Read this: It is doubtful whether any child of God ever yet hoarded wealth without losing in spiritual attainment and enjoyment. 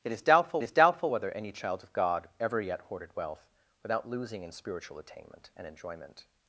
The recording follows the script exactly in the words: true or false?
false